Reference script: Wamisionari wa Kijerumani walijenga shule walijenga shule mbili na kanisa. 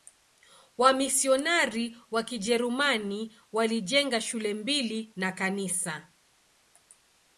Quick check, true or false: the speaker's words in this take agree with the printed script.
false